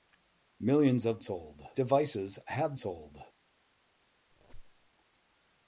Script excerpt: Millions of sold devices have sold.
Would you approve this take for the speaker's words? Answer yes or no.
yes